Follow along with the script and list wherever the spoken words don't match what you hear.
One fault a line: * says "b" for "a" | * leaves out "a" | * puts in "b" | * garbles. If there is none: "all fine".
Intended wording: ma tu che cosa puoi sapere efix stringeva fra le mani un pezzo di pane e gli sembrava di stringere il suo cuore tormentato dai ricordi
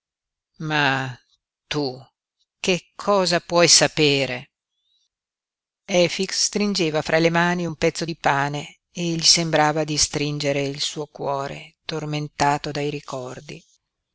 all fine